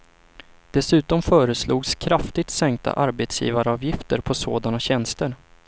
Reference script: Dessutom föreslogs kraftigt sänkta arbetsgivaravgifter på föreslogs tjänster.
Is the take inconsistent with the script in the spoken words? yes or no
yes